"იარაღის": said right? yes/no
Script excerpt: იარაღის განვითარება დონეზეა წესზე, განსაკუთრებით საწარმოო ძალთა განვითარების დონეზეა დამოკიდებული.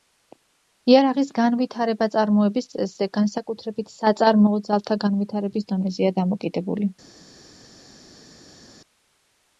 yes